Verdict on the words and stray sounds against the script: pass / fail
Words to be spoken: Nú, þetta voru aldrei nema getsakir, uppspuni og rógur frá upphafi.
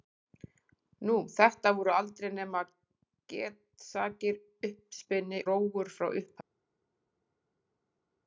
fail